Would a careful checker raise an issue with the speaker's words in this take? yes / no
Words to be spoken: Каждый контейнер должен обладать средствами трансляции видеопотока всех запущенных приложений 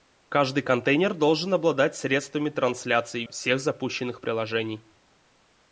yes